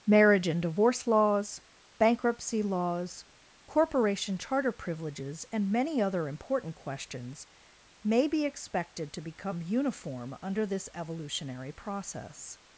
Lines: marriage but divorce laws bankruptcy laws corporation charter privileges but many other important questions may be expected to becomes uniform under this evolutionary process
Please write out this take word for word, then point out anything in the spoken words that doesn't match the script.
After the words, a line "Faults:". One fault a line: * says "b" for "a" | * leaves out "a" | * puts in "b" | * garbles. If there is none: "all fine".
marriage and divorce laws bankruptcy laws corporation charter privileges and many other important questions may be expected to become uniform under this evolutionary process
Faults:
* says "and" for "but"
* says "and" for "but"
* says "become" for "becomes"